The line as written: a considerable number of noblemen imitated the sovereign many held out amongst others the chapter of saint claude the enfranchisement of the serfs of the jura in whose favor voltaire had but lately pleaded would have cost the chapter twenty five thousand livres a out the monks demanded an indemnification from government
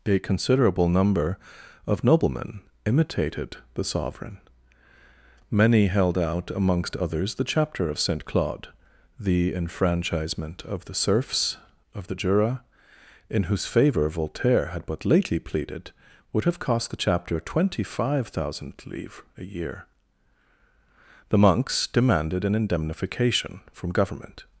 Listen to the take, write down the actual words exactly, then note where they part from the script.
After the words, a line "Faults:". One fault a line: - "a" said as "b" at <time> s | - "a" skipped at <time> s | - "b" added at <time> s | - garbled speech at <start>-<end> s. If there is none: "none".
a considerable number of noblemen imitated the sovereign many held out amongst others the chapter of saint claude the enfranchisement of the serfs of the jura in whose favor voltaire had but lately pleaded would have cost the chapter twenty five thousand livres a year the monks demanded an indemnification from government
Faults:
- "out" said as "year" at 19.4 s